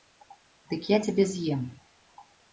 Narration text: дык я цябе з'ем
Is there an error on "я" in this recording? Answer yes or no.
no